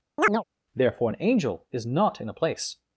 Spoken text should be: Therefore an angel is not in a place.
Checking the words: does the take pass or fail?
pass